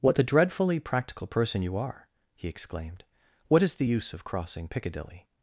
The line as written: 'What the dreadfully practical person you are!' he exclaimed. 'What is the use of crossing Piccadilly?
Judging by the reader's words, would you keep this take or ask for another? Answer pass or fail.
pass